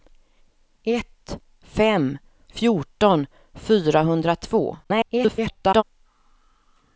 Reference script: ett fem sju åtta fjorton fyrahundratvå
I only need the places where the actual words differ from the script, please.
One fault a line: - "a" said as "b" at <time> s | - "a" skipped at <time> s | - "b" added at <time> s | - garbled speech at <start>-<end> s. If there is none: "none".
- "sju åtta" skipped at 2.2 s
- garbled speech at 4.8-5.8 s